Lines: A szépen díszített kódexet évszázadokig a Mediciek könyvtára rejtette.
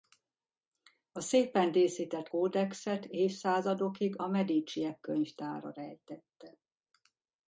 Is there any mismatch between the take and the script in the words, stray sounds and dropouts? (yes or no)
no